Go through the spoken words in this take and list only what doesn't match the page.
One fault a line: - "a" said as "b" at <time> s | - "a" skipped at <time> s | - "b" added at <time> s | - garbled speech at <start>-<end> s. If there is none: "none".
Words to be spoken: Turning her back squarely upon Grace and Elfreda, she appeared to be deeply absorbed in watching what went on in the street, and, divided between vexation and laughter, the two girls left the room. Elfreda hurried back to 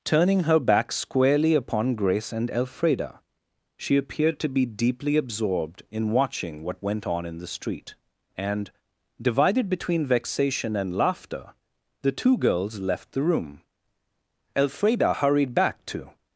none